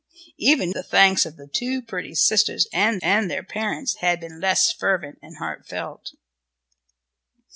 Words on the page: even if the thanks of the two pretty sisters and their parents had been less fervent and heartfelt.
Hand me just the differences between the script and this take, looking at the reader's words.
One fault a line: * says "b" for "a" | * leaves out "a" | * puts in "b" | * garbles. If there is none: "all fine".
* leaves out "if"
* puts in "and"